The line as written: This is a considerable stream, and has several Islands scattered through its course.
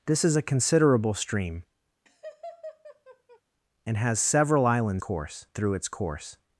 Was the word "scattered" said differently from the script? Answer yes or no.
yes